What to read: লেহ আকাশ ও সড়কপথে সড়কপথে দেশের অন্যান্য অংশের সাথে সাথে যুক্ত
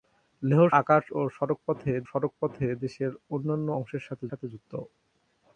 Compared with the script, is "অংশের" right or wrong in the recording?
right